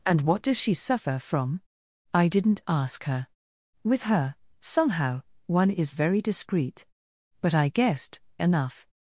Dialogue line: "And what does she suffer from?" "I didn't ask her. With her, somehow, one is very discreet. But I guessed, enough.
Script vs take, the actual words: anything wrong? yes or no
no